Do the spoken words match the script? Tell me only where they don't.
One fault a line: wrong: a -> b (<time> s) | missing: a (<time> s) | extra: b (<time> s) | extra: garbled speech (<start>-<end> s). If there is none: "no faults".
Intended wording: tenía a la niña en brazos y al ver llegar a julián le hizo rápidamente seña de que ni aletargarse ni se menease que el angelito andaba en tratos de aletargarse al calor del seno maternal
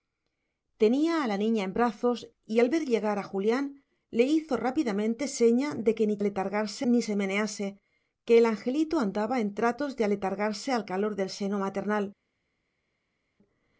no faults